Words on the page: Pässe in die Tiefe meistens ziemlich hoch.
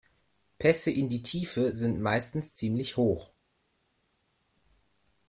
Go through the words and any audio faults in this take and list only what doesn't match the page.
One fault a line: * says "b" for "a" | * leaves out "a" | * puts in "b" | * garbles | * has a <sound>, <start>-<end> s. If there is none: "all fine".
* puts in "sind"